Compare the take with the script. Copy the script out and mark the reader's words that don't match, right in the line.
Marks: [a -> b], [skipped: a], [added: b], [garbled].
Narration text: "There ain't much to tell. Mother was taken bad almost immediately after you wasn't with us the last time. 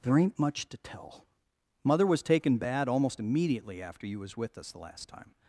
"There ain't much to tell. Mother was taken bad almost immediately after you [wasn't -> was] with us the last time.